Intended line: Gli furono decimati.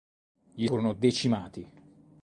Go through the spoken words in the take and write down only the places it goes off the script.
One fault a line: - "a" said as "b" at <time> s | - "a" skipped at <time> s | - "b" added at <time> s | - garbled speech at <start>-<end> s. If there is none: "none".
none